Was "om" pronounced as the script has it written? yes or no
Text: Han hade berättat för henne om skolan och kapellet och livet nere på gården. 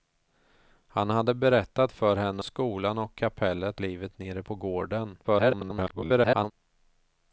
no